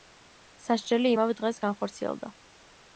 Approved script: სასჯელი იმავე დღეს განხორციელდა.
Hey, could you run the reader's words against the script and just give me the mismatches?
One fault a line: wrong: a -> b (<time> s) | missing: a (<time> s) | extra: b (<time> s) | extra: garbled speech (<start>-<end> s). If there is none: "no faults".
no faults